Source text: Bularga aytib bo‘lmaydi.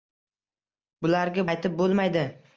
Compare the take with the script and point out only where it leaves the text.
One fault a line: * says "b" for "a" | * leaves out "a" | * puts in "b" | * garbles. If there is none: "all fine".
all fine